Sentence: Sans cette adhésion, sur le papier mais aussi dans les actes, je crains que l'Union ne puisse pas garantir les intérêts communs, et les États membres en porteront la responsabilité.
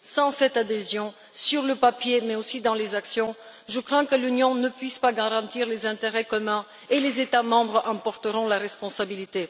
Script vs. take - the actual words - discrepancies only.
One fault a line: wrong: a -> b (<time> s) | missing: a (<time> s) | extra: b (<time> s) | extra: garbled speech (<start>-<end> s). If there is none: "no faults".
no faults